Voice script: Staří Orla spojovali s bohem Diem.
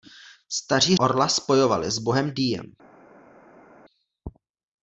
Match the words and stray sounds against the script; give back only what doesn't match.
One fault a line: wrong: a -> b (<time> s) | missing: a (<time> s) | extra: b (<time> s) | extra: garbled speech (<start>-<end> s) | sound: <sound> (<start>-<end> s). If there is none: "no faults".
no faults